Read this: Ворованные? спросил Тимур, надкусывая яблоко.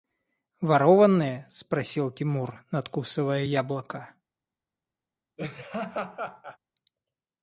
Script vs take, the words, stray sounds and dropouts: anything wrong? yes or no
yes